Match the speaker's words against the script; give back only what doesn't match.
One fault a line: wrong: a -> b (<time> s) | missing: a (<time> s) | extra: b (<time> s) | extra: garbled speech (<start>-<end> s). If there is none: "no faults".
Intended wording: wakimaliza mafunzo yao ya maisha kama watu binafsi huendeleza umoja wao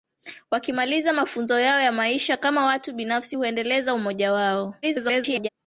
extra: garbled speech (4.8-5.5 s)